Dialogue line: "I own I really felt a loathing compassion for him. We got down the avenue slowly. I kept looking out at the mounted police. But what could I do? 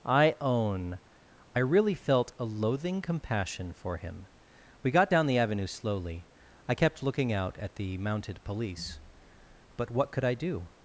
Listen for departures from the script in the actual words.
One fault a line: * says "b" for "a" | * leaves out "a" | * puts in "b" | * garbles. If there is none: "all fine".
all fine